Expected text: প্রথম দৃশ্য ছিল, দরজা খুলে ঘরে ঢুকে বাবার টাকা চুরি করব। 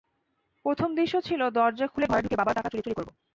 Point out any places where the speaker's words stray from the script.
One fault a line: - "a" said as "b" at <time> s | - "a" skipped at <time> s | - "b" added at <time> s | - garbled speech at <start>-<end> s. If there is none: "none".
- "চুরি" added at 2.8 s